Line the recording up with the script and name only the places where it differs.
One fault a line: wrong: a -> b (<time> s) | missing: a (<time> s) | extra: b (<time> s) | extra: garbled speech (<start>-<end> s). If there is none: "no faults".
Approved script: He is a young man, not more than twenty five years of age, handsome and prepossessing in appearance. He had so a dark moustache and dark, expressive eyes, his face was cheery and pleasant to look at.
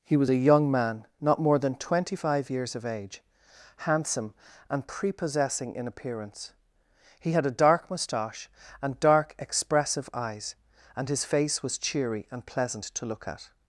wrong: is -> was (0.2 s)
missing: so (7.5 s)
extra: and (10.9 s)